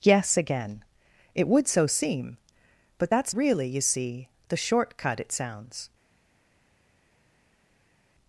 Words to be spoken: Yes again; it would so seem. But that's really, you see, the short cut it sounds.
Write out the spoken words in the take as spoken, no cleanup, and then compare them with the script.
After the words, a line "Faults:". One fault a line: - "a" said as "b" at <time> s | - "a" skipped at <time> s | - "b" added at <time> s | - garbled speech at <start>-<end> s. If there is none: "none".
Yes again; it would so seem. But that's really, you see, the short cut it sounds.
Faults:
none